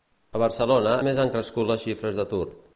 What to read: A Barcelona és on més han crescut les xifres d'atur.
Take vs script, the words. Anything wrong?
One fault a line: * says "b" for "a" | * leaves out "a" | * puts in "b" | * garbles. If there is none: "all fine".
* leaves out "és on"